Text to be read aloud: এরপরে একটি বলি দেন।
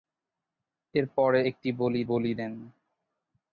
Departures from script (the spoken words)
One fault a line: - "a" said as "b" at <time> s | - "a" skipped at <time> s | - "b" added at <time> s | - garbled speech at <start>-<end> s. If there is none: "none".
- "বলি" added at 2.1 s